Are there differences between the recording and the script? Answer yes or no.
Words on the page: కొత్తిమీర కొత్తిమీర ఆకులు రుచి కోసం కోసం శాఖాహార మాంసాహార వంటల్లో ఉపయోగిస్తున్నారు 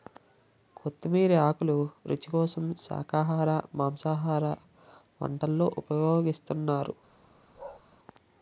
yes